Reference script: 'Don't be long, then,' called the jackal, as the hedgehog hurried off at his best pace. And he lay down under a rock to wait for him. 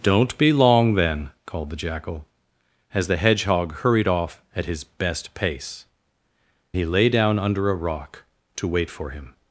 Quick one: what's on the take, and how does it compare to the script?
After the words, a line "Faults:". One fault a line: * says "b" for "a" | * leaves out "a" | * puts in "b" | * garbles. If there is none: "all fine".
'Don't be long, then,' called the jackal, as the hedgehog hurried off at his best pace. He lay down under a rock to wait for him.
Faults:
* leaves out "And"